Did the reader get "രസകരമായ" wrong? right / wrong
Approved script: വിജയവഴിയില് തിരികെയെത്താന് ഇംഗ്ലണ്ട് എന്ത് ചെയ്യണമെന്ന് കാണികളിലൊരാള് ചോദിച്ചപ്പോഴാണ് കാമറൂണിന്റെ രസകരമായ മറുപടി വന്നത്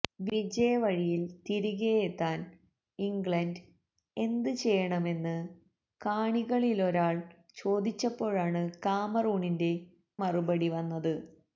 wrong